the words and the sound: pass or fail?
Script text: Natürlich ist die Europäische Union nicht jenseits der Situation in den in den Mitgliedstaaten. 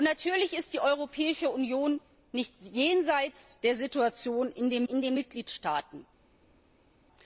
pass